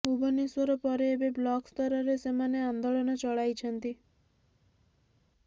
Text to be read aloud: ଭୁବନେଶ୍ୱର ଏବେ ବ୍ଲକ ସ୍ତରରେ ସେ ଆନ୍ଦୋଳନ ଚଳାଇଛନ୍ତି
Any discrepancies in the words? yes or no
yes